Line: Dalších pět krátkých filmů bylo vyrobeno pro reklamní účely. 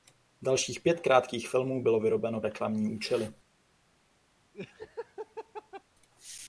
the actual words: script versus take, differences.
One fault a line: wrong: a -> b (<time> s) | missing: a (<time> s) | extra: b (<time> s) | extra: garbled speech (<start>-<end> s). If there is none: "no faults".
missing: pro (2.4 s)